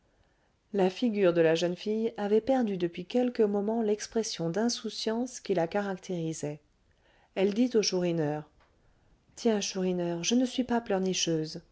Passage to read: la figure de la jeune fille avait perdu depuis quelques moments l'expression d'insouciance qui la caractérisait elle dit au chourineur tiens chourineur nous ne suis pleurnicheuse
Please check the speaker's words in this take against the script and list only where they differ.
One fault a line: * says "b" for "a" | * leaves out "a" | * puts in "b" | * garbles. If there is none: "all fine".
* says "je" for "nous"
* puts in "pas"